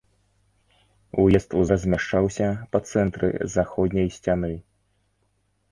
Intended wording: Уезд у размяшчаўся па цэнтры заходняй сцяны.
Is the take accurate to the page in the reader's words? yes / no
yes